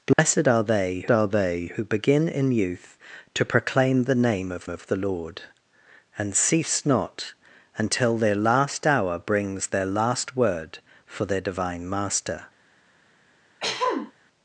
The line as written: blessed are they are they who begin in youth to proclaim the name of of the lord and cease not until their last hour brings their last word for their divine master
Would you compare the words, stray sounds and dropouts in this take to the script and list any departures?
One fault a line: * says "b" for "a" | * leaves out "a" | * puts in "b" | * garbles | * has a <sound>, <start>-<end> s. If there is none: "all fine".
* has a dropout, 0.1-0.2 s
* has a throat clearing, 13.6-14.1 s